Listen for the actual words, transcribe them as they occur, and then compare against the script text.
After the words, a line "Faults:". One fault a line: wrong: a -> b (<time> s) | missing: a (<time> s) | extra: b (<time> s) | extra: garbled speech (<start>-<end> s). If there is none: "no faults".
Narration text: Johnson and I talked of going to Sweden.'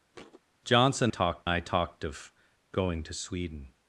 Johnson talked I talked of going to Sweden.'
Faults:
wrong: and -> talked (1.1 s)